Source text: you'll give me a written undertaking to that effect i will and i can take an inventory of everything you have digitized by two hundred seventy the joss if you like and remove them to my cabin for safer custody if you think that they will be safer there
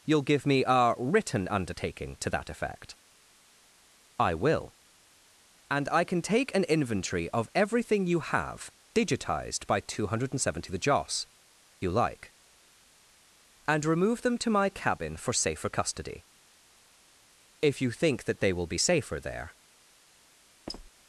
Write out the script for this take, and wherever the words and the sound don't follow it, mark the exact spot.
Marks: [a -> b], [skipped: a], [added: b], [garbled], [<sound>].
you'll give me a written undertaking to that effect i will and i can take an inventory of everything you have digitized by two hundred seventy the joss [skipped: if] you like and remove them to my cabin for safer custody if you think that they will be safer there [squeak]